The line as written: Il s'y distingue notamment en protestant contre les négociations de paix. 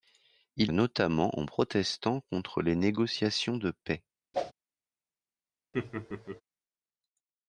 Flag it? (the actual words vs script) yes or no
yes